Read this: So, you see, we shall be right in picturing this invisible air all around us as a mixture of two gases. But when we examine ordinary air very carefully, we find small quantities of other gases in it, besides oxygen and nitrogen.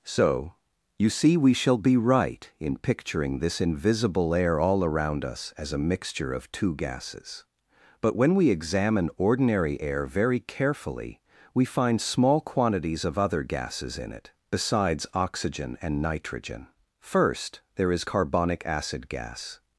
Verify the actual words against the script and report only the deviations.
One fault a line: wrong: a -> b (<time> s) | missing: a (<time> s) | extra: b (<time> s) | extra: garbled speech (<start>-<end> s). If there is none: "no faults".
extra: First there is carbonic acid gas (17.0 s)